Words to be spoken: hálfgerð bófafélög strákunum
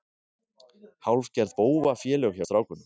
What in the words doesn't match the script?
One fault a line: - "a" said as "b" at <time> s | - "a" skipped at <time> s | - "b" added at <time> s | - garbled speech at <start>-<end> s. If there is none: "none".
- "hjá" added at 2.3 s